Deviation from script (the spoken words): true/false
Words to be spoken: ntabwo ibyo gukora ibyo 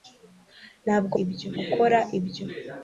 false